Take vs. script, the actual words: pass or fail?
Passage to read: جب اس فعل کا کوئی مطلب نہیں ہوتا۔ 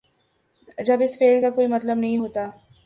pass